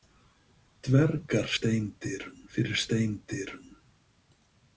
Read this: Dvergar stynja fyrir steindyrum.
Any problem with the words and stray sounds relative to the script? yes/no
yes